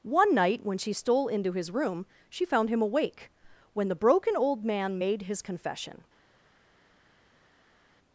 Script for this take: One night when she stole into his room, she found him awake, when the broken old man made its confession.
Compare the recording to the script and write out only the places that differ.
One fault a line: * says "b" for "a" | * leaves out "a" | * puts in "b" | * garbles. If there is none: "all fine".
* says "his" for "its"